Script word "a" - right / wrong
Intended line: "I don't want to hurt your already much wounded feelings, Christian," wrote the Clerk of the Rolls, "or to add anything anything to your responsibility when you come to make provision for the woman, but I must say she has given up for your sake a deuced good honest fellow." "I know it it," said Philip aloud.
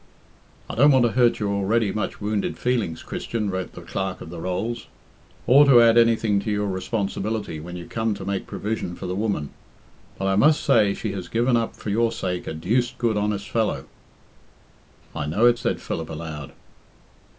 right